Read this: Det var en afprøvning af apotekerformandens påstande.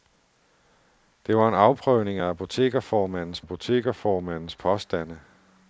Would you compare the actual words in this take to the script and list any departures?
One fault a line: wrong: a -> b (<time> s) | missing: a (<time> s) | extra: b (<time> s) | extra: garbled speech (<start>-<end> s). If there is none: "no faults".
extra: apotekerformandens (3.4 s)